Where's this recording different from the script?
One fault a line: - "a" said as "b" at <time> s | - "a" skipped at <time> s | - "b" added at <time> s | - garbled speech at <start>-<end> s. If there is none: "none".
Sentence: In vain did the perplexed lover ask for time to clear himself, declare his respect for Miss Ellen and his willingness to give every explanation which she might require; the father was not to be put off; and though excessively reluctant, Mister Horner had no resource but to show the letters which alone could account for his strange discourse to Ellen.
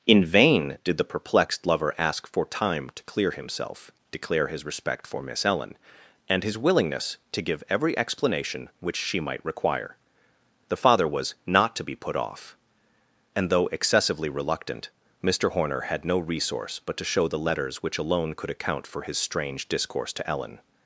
none